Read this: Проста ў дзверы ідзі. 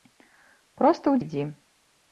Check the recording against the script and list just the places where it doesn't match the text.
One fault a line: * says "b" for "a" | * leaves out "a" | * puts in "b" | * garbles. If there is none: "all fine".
* leaves out "дзверы"